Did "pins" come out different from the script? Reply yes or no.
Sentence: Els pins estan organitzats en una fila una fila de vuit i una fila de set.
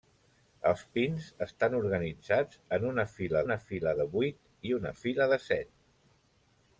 no